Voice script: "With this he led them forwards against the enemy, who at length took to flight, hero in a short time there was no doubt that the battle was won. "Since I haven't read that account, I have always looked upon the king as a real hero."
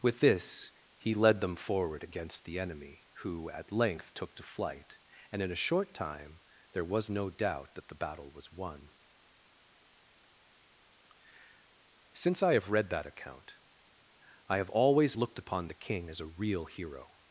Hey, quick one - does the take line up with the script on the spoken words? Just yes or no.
no